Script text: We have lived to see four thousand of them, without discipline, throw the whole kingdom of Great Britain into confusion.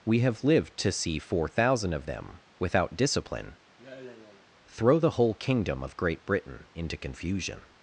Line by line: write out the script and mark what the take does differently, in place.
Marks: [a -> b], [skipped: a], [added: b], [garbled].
We have lived to see four thousand of them, without discipline, throw the whole kingdom of Great Britain into confusion.